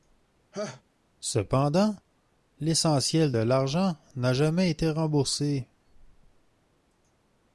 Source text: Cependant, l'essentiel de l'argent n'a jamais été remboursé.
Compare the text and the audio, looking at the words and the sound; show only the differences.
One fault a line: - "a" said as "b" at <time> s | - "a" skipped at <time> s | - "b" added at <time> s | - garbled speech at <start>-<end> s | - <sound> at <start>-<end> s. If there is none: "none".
- laugh at 0.5-0.8 s